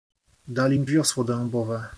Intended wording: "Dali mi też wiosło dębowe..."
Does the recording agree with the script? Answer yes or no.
no